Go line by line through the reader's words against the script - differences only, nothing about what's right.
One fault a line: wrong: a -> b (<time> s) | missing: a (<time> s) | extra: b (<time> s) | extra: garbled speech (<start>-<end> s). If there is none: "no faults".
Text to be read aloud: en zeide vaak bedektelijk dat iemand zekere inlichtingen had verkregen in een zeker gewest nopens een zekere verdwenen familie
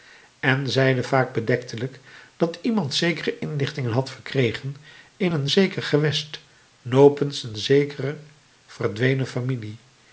no faults